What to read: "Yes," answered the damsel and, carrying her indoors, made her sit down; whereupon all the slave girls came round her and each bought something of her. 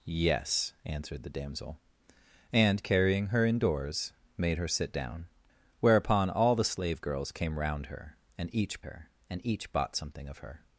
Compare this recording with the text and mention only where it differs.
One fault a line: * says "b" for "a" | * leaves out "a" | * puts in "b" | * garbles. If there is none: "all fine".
* puts in "her and each"